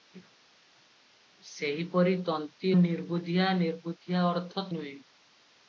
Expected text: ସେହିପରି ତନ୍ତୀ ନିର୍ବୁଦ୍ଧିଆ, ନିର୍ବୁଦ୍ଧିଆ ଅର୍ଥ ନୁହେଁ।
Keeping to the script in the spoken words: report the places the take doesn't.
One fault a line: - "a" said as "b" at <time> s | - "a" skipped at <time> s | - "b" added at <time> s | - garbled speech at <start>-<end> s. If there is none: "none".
none